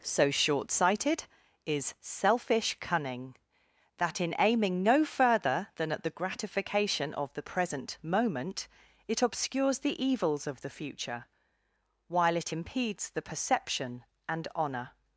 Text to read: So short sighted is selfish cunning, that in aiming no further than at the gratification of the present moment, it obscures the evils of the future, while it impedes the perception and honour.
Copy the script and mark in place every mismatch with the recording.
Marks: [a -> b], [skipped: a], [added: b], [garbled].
So short sighted is selfish cunning, that in aiming no further than at the gratification of the present moment, it obscures the evils of the future, while it impedes the perception and honour.